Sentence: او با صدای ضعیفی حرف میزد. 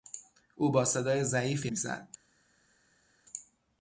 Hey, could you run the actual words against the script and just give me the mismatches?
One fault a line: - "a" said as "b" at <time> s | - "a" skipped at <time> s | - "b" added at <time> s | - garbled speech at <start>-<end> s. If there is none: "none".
- "حرف" skipped at 1.7 s